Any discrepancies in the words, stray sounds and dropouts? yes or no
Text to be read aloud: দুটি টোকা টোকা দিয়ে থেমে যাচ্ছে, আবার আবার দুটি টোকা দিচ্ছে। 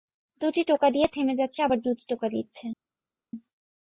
yes